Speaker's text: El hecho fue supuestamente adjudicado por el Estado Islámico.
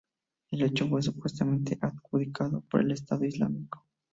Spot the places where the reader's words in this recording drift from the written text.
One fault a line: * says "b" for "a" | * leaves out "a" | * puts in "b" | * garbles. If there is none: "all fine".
all fine